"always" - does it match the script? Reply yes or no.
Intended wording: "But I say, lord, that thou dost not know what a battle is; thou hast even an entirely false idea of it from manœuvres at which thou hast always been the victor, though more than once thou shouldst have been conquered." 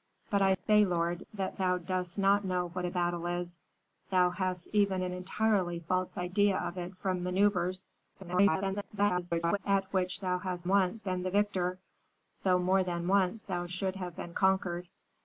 no